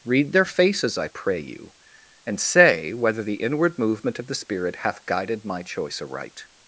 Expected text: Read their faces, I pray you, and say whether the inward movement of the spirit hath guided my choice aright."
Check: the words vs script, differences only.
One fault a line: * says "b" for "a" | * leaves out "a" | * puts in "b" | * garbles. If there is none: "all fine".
all fine